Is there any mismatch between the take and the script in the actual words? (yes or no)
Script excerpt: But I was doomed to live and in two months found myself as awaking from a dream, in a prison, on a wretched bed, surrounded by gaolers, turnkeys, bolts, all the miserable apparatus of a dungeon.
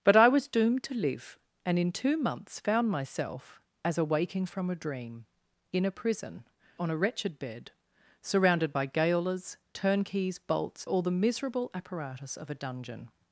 no